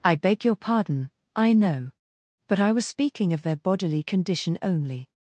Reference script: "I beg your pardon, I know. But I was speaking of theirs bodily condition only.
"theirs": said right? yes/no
no